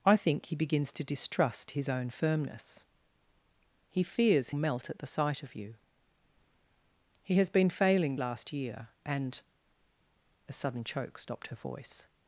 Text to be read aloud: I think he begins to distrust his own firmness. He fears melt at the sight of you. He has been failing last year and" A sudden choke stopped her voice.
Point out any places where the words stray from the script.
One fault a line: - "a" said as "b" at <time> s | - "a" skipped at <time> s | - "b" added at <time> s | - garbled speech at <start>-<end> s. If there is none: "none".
none